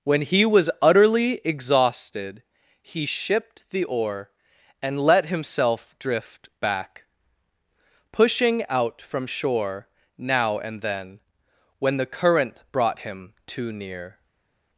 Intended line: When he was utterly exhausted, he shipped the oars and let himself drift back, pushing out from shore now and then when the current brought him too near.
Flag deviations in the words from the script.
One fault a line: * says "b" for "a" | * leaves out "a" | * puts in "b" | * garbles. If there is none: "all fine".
* says "oar" for "oars"